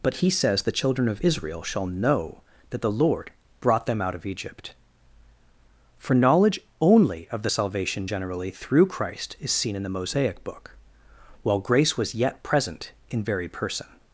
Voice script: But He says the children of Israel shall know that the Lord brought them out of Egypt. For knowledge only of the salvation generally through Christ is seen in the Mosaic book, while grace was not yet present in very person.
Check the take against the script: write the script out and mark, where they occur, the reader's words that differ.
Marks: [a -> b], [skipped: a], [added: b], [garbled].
But He says the children of Israel shall know that the Lord brought them out of Egypt. For knowledge only of the salvation generally through Christ is seen in the Mosaic book, while grace was [skipped: not] yet present in very person.